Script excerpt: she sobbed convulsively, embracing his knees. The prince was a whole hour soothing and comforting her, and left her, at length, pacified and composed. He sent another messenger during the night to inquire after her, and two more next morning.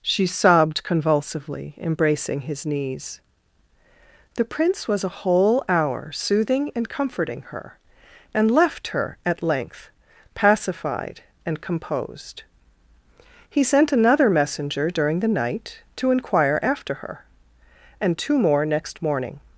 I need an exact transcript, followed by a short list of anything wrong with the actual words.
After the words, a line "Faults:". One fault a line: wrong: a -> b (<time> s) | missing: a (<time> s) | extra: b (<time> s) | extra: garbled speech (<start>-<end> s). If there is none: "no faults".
she sobbed convulsively, embracing his knees. The prince was a whole hour soothing and comforting her, and left her, at length, pacified and composed. He sent another messenger during the night to inquire after her, and two more next morning.
Faults:
no faults